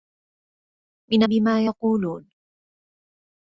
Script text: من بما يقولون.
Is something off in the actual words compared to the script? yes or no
no